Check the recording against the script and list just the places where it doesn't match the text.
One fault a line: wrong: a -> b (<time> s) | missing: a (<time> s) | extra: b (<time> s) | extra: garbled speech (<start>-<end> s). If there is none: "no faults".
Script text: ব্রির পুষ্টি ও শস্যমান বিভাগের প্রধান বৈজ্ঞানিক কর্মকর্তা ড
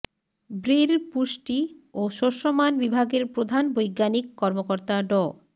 no faults